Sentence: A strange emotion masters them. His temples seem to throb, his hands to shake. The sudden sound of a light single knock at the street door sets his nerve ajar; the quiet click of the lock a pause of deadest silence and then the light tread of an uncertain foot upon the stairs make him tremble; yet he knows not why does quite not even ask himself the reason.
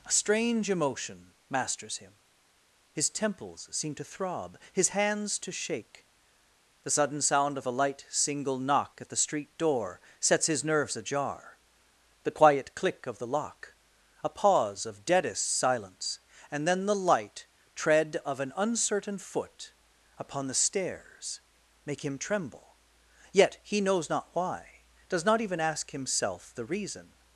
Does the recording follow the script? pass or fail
fail